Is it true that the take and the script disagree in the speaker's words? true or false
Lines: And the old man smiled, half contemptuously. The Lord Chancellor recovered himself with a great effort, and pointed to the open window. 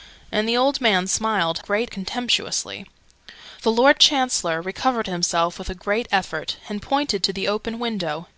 true